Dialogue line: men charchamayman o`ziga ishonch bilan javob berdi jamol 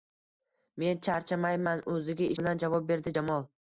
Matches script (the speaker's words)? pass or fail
fail